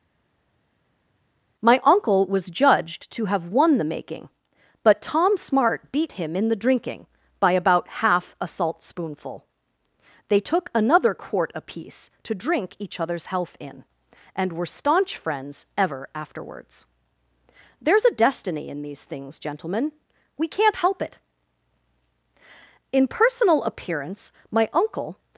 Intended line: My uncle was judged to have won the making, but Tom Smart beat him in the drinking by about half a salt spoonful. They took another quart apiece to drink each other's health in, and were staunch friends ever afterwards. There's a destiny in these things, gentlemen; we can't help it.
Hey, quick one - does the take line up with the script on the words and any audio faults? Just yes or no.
no